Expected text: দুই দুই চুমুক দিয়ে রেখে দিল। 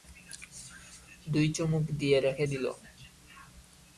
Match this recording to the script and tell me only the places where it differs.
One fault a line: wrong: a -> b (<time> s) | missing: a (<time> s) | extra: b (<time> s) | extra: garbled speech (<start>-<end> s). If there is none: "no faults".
missing: দুই (1.5 s)